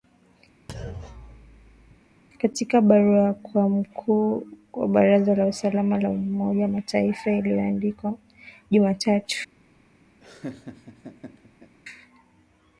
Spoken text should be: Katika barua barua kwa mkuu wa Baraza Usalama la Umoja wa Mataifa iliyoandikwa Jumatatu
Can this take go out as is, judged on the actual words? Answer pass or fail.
fail